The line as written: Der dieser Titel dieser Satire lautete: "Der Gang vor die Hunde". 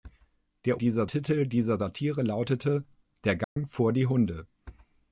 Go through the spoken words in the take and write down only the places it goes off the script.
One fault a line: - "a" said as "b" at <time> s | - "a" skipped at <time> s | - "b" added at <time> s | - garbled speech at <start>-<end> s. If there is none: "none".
none